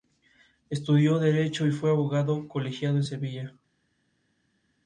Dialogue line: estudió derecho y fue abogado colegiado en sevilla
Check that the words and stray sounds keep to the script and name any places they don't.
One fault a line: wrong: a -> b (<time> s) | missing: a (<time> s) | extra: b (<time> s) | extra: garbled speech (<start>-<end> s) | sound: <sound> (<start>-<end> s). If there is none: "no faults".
no faults